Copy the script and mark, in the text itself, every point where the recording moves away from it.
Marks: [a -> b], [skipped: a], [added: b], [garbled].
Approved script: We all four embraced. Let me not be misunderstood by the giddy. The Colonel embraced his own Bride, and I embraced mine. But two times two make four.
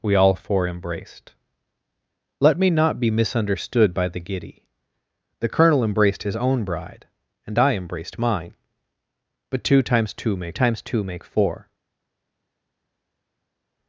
We all four embraced. Let me not be misunderstood by the giddy. The Colonel embraced his own Bride, and I embraced mine. But two times two make [added: times two make] four.